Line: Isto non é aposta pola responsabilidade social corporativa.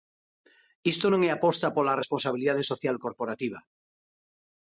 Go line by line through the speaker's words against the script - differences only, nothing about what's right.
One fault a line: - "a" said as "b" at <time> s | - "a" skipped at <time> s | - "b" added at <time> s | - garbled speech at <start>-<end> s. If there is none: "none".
none